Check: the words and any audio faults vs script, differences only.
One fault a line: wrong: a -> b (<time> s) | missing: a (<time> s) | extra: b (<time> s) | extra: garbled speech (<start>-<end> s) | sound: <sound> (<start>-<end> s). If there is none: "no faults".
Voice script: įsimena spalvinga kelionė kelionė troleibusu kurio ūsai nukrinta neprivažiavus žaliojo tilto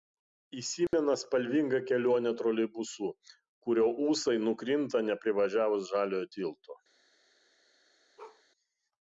sound: dropout (0.9-0.9 s)
missing: kelionė (2.3 s)
sound: bark (8.2-8.4 s)